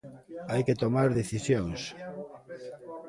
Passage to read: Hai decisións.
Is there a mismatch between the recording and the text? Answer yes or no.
yes